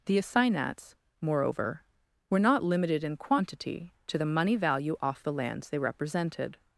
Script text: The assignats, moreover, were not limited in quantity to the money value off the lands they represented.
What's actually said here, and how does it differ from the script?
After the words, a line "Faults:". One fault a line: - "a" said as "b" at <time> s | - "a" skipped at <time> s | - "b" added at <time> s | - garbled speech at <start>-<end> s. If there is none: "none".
The assignats, moreover, were not limited in quantity to the money value off the lands they represented.
Faults:
none